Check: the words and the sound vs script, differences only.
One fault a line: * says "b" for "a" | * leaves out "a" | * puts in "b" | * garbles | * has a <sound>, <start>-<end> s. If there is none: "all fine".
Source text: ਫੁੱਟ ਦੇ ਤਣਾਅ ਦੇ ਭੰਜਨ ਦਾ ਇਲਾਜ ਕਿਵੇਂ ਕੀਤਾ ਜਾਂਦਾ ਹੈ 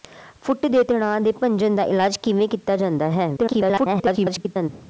* garbles